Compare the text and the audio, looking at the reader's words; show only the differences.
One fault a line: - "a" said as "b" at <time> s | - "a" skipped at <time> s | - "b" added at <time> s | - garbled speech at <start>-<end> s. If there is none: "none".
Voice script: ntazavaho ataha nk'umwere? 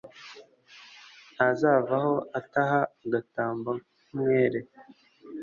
- "agatamba" added at 3.0 s